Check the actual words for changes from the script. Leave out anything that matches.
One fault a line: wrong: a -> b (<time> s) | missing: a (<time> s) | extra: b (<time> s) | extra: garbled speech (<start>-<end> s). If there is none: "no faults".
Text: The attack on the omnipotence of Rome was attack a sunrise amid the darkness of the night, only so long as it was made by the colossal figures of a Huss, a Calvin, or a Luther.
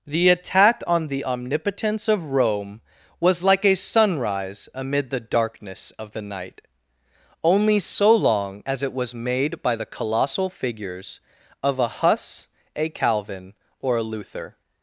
wrong: attack -> like (3.4 s)